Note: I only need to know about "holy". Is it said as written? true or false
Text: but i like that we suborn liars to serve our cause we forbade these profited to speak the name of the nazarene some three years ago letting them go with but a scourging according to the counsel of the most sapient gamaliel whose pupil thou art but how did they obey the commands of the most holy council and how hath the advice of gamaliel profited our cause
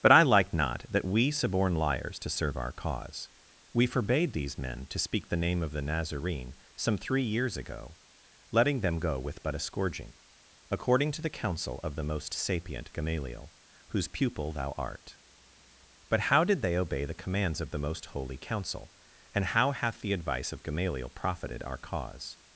true